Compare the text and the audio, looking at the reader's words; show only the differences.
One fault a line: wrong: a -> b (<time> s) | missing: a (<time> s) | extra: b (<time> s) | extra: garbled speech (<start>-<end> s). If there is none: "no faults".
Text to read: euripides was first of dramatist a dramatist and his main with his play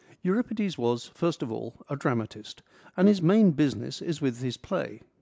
wrong: dramatist -> all (1.5 s)
extra: business is (3.5 s)